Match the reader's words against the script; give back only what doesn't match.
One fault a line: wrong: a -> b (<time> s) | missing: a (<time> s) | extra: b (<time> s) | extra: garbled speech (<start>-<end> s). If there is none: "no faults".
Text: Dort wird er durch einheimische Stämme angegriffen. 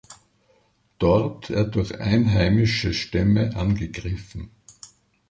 missing: wird (1.5 s)